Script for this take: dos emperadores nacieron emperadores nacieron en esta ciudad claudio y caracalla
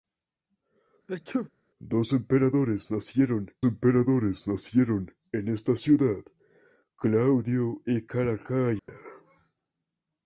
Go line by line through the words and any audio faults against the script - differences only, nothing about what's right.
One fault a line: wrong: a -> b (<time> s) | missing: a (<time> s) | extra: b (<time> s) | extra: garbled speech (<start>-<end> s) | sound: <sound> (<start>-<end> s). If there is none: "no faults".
sound: sneeze (1.1-1.5 s)
sound: dropout (8.8-8.9 s)